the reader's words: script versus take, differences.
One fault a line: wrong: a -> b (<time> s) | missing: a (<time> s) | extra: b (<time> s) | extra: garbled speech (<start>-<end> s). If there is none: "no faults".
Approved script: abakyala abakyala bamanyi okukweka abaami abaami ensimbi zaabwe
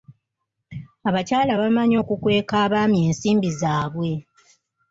missing: abakyala (1.5 s)
missing: abaami (3.0 s)